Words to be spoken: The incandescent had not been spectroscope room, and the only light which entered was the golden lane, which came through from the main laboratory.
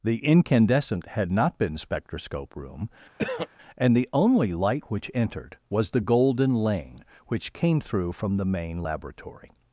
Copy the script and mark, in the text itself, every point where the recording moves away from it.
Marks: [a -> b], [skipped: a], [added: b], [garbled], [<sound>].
The incandescent had not been spectroscope room, [throat clearing] and the only light which entered was the golden lane, which came through from the main laboratory.